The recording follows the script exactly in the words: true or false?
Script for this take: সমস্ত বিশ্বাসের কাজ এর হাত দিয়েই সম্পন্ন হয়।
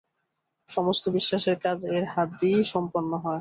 true